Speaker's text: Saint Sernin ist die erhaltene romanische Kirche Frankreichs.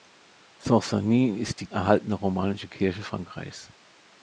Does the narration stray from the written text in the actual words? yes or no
no